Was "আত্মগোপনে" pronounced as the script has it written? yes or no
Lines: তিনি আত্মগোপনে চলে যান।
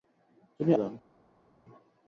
no